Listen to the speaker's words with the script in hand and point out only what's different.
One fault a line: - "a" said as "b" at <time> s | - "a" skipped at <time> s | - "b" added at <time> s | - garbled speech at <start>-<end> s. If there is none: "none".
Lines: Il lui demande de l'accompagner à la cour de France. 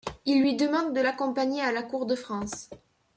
none